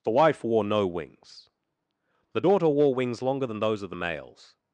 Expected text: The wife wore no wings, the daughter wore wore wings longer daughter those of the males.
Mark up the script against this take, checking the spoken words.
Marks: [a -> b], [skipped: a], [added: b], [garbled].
The wife wore no wings, the daughter wore [skipped: wore] wings longer [daughter -> than] those of the males.